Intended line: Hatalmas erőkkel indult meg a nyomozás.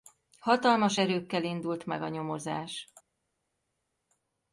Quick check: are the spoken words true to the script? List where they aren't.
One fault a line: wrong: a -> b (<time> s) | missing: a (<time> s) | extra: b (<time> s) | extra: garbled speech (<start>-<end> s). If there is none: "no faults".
no faults